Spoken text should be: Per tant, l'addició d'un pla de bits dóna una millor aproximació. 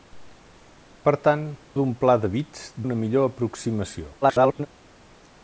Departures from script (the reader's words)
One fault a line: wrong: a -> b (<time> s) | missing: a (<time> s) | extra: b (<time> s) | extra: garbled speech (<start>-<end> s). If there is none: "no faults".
missing: l'addició (1.4 s)
missing: dóna (2.7 s)
extra: garbled speech (4.2-4.7 s)